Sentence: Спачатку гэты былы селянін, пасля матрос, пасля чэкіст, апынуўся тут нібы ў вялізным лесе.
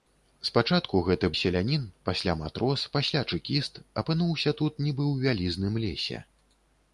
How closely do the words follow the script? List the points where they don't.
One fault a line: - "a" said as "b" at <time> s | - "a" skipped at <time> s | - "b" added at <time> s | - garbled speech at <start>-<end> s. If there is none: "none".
- "былы" skipped at 1.3 s